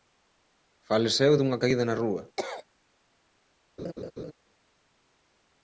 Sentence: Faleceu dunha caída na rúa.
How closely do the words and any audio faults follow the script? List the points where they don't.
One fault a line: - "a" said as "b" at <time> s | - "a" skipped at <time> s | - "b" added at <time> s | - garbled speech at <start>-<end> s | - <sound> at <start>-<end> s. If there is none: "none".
- cough at 2.4-2.6 s
- laugh at 3.8-4.3 s